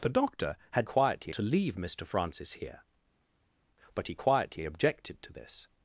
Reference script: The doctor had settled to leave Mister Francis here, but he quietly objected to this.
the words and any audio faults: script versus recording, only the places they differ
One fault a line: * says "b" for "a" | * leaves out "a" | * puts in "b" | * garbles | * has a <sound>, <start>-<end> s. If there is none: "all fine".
* says "quietly" for "settled"